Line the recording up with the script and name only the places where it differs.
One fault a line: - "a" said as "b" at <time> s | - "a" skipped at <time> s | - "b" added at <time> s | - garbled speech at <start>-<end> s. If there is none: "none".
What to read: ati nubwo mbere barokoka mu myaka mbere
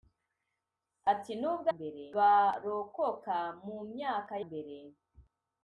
none